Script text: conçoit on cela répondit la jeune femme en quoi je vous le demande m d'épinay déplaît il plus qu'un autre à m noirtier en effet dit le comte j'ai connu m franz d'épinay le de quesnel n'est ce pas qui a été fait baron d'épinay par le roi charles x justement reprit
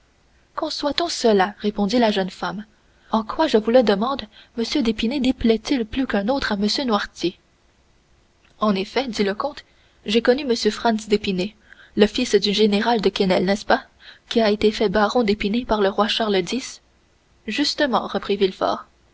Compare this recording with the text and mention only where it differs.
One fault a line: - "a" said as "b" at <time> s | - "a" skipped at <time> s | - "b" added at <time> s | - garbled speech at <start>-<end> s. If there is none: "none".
- "fils du général" added at 12.1 s